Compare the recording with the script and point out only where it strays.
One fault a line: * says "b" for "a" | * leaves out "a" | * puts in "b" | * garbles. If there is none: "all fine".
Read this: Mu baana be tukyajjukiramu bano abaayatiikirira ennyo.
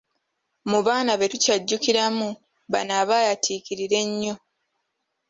all fine